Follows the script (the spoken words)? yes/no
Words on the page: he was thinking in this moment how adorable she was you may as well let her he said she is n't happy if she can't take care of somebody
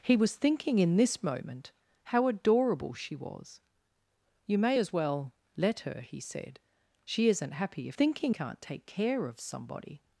no